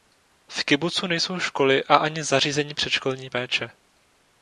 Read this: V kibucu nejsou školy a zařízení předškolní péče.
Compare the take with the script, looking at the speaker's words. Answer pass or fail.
fail